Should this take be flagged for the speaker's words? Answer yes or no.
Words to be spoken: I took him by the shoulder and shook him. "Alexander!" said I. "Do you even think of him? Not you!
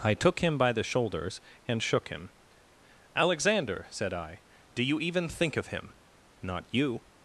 yes